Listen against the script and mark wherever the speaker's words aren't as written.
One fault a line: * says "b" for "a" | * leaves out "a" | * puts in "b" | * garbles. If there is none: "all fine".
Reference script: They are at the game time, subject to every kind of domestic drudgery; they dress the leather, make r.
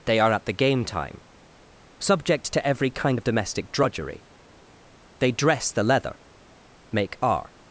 all fine